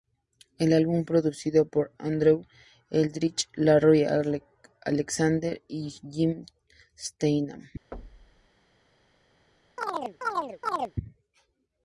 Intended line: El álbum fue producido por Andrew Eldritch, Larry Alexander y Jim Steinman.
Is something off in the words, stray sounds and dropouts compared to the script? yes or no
yes